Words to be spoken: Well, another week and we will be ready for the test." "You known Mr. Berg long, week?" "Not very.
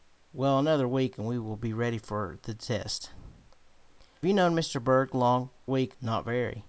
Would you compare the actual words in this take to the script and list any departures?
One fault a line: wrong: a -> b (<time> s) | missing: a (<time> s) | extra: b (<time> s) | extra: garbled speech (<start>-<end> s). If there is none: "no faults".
no faults